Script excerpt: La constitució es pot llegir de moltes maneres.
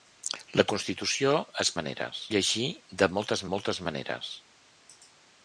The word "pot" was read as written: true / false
false